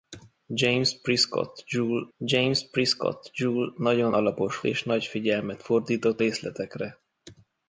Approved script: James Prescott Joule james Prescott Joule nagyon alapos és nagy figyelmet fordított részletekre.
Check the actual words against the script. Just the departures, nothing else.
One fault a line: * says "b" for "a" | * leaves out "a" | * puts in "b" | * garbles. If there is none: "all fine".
all fine